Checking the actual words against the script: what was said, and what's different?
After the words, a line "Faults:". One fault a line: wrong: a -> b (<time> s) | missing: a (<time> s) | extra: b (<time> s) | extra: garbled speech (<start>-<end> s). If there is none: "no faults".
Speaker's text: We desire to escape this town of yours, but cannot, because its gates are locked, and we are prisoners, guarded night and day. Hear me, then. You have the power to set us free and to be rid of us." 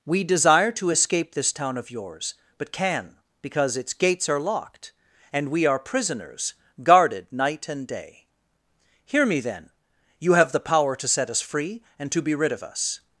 We desire to escape this town of yours, but can, because its gates are locked, and we are prisoners, guarded night and day. Hear me, then. You have the power to set us free and to be rid of us."
Faults:
wrong: cannot -> can (2.7 s)